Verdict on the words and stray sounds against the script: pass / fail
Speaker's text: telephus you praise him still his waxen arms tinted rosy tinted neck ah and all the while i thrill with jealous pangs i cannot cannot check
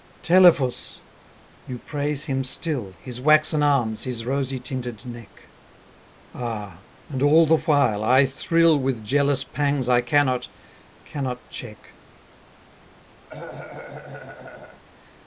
fail